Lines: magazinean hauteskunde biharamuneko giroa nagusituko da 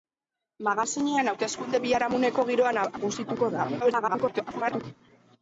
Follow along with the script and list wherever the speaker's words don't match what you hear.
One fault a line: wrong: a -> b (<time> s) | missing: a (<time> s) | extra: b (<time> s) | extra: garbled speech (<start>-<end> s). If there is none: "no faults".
extra: garbled speech (3.8-4.8 s)